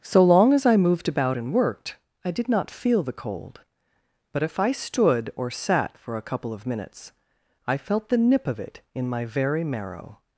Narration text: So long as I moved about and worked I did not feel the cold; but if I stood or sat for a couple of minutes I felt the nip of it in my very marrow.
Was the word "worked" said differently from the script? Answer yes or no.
no